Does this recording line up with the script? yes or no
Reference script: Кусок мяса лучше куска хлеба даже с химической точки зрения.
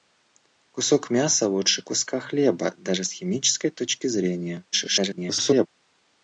no